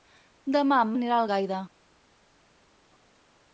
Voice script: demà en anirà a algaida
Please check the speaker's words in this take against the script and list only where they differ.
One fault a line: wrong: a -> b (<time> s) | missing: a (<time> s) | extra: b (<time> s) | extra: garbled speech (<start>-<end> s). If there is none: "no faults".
no faults